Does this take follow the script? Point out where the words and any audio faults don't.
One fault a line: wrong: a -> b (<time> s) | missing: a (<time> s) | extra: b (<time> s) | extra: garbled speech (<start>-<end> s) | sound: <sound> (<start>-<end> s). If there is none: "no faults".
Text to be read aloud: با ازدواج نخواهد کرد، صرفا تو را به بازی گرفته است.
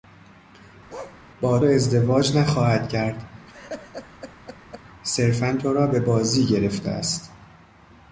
sound: bark (0.9-1.2 s)
sound: laugh (3.5-4.8 s)